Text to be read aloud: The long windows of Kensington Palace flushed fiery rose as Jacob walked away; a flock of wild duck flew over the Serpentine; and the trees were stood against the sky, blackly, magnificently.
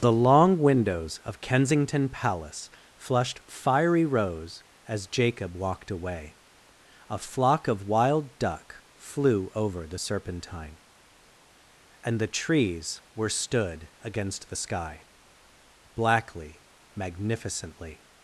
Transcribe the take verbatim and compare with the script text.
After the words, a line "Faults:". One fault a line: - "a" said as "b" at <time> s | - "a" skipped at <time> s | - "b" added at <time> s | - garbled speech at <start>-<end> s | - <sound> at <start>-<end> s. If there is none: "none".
The long windows of Kensington Palace flushed fiery rose as Jacob walked away; a flock of wild duck flew over the Serpentine; and the trees were stood against the sky, blackly, magnificently.
Faults:
none